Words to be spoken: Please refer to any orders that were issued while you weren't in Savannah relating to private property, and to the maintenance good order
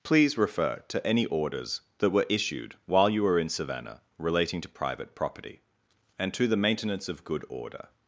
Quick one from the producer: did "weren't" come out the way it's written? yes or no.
no